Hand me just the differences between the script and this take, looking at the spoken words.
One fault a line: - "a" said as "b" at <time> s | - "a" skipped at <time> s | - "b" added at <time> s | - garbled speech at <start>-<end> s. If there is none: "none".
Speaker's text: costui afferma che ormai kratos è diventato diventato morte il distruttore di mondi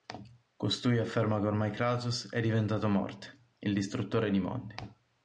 - "diventato" skipped at 2.9 s